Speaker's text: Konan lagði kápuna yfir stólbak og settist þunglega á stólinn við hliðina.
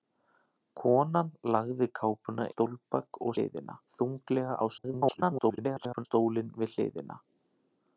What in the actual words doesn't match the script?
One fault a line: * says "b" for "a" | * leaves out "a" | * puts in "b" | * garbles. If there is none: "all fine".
* leaves out "yfir"
* says "hliðina" for "settist"
* garbles